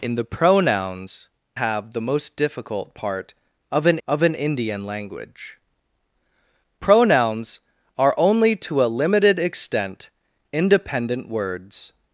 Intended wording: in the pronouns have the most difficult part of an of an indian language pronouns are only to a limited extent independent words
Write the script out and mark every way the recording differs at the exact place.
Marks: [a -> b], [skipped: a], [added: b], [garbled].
in the pronouns have the most difficult part of an of an indian language pronouns are only to a limited extent independent words